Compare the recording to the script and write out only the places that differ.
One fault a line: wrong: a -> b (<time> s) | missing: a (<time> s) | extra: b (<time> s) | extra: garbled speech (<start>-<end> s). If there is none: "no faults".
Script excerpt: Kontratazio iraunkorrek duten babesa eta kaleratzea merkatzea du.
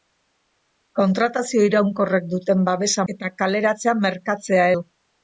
no faults